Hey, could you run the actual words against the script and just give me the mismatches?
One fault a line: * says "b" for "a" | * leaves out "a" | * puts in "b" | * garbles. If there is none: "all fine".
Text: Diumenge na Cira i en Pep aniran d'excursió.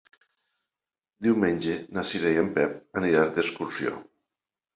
all fine